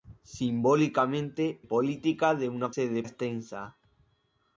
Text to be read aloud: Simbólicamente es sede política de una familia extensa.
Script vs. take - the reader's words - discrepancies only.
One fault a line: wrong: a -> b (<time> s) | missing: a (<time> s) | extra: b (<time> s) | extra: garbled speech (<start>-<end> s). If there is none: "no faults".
missing: es sede (1.6 s)
wrong: familia -> sede (2.7 s)